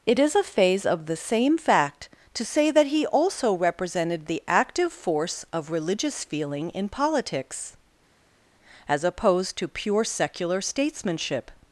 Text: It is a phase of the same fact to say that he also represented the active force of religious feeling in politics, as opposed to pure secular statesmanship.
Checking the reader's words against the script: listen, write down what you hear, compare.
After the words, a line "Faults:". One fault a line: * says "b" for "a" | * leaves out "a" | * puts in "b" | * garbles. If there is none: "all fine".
It is a phase of the same fact to say that he also represented the active force of religious feeling in politics, as opposed to pure secular statesmanship.
Faults:
all fine